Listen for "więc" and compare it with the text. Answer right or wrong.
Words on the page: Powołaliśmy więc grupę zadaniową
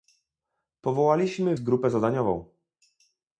wrong